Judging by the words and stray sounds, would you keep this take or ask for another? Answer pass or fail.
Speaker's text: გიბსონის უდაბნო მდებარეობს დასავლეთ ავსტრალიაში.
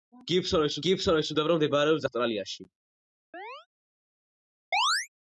fail